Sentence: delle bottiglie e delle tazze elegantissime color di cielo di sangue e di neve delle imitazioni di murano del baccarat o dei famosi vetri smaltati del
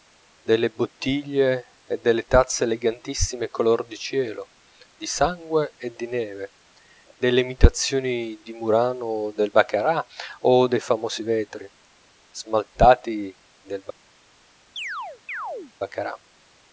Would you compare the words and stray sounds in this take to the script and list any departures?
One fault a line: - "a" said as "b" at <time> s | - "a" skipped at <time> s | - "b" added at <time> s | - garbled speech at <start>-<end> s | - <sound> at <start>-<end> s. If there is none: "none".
- chirp at 14.8-15.7 s